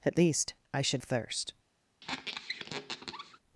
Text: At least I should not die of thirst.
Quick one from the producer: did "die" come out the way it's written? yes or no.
no